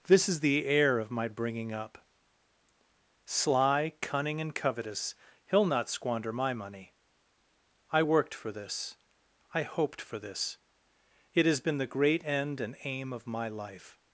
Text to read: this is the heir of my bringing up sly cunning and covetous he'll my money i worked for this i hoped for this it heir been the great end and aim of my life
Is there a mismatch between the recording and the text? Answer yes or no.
yes